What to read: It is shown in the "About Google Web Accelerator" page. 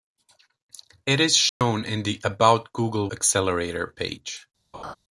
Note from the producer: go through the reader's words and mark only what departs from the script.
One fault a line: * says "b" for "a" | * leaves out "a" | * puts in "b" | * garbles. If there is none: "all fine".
* leaves out "Web"